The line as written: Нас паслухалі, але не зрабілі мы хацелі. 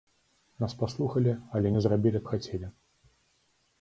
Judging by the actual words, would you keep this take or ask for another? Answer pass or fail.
pass